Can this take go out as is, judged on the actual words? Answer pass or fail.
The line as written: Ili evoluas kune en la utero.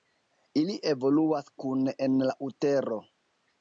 pass